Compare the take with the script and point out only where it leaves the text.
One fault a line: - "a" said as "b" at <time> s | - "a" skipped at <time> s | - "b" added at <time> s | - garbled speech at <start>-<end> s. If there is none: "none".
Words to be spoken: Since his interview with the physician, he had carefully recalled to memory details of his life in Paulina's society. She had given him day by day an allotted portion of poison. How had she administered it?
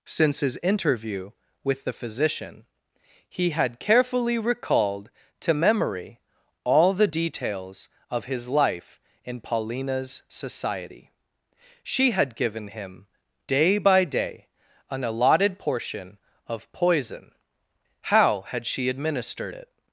- "all the" added at 6.6 s